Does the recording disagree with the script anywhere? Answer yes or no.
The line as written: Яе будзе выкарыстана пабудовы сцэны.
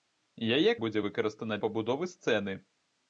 no